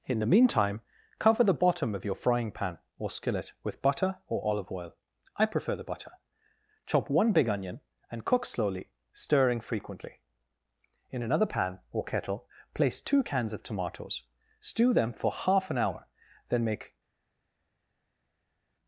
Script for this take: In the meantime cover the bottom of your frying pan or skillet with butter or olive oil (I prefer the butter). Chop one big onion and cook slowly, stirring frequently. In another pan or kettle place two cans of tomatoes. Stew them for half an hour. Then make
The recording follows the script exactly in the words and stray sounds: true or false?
true